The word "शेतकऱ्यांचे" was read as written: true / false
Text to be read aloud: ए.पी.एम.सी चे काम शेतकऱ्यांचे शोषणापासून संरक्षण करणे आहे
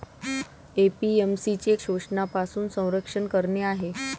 false